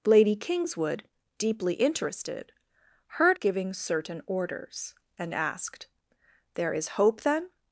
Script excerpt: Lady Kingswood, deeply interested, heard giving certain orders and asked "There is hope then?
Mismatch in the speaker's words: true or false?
false